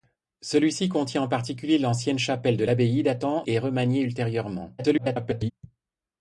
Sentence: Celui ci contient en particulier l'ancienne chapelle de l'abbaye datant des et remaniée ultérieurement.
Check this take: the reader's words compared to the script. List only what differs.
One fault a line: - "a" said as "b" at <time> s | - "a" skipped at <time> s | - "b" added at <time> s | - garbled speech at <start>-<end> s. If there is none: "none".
- "des" skipped at 3.4 s
- garbled speech at 4.8-5.5 s